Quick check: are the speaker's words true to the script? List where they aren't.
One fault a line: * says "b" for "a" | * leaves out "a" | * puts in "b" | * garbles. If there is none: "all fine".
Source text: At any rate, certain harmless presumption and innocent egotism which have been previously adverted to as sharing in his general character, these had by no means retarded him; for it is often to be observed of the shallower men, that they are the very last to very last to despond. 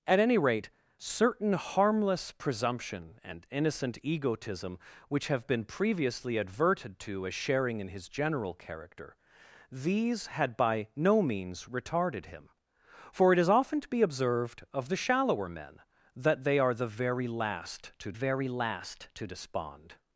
all fine